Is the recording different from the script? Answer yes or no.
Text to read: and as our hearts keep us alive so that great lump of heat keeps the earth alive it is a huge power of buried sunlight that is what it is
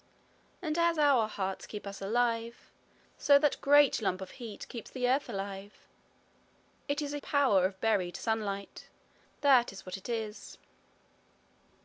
yes